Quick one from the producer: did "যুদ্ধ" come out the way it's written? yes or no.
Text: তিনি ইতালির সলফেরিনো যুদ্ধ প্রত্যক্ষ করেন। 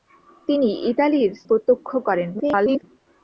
no